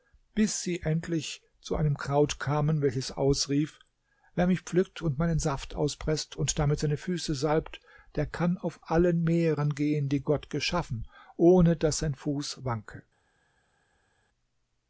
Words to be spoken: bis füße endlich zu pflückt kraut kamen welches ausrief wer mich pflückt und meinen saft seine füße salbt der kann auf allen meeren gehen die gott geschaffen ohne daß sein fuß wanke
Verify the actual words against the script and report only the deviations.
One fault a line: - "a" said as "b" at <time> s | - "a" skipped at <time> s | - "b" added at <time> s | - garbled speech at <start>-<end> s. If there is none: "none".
- "füße" said as "sie" at 0.6 s
- "pflückt" said as "einem" at 1.8 s
- "auspreßt und damit" added at 5.8 s